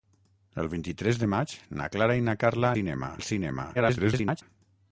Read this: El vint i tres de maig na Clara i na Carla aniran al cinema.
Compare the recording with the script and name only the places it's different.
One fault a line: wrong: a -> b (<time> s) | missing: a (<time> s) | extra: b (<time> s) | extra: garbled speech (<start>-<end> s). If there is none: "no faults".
wrong: aniran -> cinema (2.8 s)
extra: garbled speech (3.7-4.4 s)